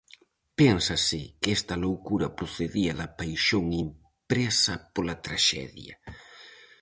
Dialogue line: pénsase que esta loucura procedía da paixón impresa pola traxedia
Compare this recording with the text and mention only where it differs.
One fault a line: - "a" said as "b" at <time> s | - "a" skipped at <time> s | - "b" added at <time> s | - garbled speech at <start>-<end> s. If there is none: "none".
none